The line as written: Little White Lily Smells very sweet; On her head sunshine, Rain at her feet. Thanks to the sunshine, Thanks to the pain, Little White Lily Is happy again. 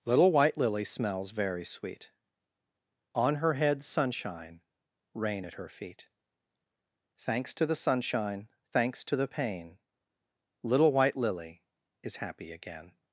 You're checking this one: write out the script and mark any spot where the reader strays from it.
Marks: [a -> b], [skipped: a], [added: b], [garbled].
Little White Lily Smells very sweet; On her head sunshine, Rain at her feet. Thanks to the sunshine, Thanks to the pain, Little White Lily Is happy again.